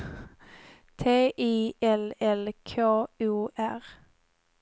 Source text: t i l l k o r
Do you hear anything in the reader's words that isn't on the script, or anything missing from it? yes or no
no